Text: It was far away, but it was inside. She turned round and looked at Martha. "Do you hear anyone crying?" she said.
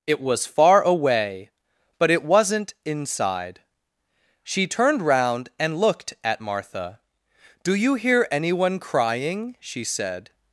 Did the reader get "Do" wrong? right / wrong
right